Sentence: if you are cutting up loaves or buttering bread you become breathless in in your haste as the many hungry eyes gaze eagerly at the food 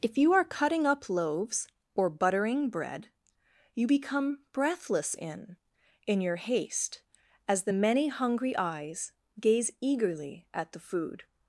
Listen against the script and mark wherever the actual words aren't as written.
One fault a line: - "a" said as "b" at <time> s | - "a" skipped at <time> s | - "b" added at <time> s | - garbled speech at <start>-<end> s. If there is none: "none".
none